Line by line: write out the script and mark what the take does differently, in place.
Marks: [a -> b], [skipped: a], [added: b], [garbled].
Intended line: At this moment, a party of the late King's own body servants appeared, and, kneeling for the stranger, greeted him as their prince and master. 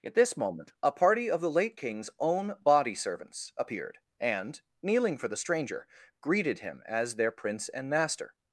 At this moment, a party of the late King's own body servants appeared, and, kneeling for the stranger, greeted him as their prince and master.